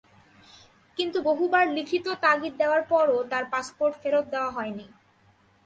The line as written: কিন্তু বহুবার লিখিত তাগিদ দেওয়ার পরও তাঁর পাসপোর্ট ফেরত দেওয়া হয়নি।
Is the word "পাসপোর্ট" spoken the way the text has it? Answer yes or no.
yes